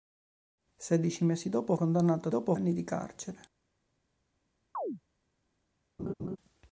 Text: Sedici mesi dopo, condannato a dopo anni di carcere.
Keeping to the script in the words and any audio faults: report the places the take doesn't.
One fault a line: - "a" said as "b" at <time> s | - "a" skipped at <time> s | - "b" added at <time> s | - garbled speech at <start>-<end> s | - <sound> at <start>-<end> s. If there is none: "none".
- chirp at 4.7-5.0 s
- laugh at 6.0-6.4 s